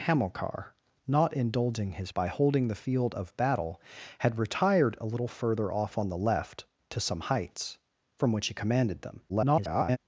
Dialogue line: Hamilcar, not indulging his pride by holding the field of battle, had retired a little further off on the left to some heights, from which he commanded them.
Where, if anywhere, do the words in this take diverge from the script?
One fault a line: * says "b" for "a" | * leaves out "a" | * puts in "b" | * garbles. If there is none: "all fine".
* leaves out "pride"
* garbles